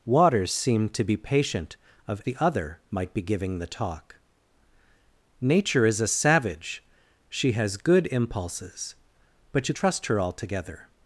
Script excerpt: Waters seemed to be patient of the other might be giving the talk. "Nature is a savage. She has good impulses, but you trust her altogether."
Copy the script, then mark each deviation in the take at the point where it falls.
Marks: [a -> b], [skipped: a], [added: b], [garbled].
Waters seemed to be patient of the other might be giving the talk. "Nature is a savage. She has good impulses, but you trust her altogether."